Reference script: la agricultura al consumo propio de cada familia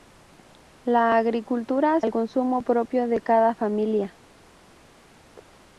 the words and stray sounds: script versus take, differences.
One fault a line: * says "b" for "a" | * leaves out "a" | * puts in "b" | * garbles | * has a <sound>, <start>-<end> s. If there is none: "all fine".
all fine